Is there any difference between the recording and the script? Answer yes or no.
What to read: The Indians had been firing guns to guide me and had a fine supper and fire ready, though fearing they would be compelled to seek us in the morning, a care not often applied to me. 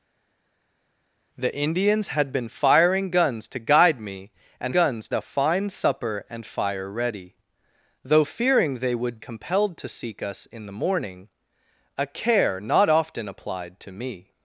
yes